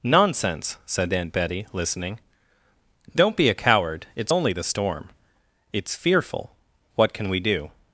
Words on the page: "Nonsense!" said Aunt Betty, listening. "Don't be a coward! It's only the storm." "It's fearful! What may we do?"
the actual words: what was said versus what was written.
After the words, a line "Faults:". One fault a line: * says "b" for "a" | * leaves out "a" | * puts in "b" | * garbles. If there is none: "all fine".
"Nonsense!" said Aunt Betty, listening. "Don't be a coward! It's only the storm." "It's fearful! What can we do?"
Faults:
* says "can" for "may"